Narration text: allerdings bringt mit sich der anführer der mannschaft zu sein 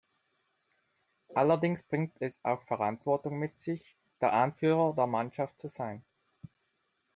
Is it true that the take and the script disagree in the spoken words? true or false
true